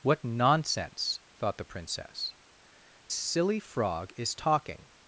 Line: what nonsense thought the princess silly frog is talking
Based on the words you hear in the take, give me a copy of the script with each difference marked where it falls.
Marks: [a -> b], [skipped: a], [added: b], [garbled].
what nonsense thought the princess silly frog is talking